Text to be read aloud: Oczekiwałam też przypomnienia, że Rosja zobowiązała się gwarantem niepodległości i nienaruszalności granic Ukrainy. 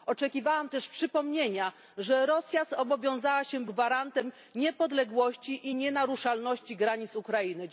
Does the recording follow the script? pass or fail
pass